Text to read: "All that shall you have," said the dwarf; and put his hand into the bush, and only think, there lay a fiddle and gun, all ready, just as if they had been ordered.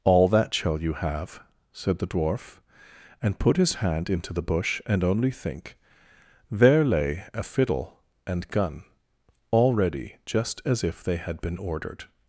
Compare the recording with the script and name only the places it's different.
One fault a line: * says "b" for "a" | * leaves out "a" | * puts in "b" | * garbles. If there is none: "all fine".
all fine